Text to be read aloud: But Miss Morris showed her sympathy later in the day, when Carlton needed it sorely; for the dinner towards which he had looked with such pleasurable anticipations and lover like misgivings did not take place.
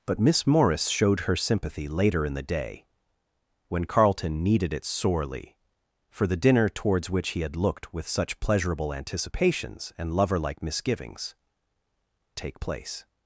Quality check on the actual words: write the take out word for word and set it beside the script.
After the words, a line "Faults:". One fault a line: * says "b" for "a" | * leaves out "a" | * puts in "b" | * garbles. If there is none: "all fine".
But Miss Morris showed her sympathy later in the day, when Carlton needed it sorely; for the dinner towards which he had looked with such pleasurable anticipations and lover like misgivings take place.
Faults:
* leaves out "did not"